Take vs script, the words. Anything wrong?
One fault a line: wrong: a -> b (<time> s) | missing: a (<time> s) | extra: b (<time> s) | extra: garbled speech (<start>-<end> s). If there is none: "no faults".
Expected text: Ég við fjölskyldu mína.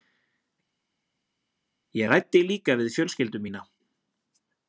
extra: ræddi líka (2.1 s)